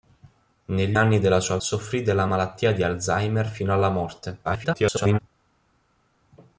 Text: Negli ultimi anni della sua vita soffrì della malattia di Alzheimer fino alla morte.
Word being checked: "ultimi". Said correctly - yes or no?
no